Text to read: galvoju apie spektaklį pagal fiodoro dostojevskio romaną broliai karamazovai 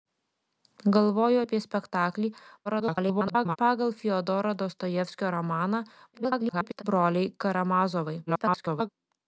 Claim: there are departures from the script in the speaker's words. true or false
true